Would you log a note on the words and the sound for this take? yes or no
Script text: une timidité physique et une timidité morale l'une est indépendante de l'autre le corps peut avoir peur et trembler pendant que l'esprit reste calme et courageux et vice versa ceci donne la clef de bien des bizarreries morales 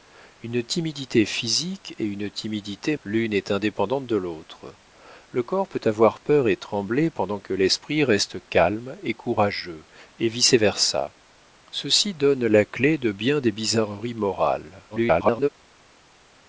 yes